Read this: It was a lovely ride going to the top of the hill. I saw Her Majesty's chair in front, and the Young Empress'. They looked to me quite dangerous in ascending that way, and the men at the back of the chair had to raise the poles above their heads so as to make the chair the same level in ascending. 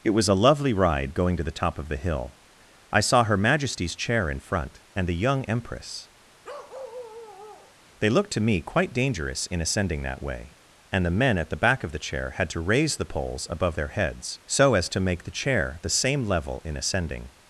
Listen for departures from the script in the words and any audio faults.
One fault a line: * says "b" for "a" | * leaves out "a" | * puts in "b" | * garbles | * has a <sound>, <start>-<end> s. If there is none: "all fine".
* has a bark, 6.4-7.8 s